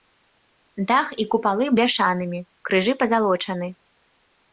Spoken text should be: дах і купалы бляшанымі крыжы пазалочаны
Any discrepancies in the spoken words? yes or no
no